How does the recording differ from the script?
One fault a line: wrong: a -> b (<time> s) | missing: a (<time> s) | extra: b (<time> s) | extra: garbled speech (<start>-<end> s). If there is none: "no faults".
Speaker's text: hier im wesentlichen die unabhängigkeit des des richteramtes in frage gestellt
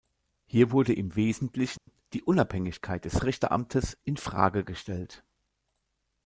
extra: wurde (0.7 s)
missing: des (3.2 s)